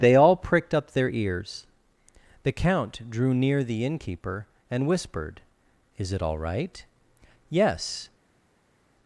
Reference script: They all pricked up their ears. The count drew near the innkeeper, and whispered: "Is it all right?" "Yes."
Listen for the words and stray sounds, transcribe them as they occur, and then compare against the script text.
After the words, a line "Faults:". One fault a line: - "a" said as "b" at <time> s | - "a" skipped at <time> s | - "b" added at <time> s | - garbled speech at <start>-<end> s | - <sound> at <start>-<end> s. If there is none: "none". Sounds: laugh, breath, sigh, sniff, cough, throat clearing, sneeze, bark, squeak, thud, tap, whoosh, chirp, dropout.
They all pricked up their ears. The count drew near the innkeeper, and whispered: "Is it all right?" "Yes."
Faults:
none